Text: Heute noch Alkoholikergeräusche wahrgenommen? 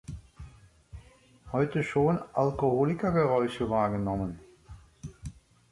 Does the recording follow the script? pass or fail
fail